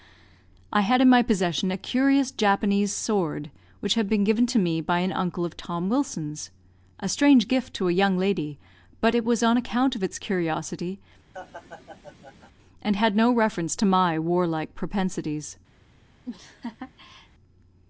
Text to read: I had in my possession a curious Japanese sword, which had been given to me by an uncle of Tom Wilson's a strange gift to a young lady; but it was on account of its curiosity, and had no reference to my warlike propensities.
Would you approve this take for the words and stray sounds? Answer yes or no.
no